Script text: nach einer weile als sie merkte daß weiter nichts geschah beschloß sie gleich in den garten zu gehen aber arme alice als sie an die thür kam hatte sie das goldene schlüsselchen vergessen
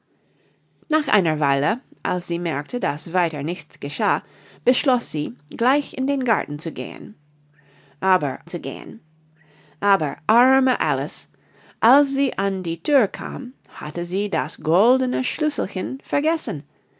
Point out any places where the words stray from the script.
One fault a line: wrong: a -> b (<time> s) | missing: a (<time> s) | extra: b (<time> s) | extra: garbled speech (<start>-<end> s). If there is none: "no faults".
extra: zu gehen aber (8.5 s)